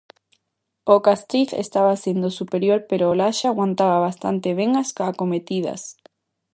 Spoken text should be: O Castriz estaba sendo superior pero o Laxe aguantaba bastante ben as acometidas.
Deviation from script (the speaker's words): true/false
false